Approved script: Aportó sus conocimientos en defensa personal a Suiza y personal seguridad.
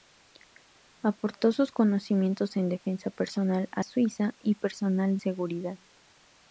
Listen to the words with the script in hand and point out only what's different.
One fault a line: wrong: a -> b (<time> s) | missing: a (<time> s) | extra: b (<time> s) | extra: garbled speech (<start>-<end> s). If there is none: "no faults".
no faults